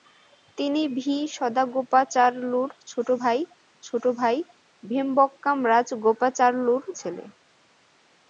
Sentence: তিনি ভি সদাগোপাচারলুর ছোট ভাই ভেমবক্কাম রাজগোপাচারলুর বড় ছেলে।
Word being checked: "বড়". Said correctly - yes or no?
no